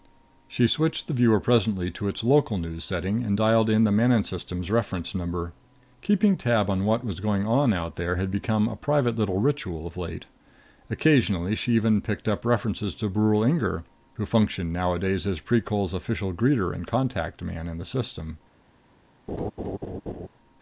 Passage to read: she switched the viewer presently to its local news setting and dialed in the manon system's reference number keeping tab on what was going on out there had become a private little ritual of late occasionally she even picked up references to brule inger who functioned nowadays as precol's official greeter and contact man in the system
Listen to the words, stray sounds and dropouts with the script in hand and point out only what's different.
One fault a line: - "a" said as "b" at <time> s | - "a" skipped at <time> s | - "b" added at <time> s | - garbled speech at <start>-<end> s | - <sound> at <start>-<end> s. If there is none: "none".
- laugh at 19.3-20.3 s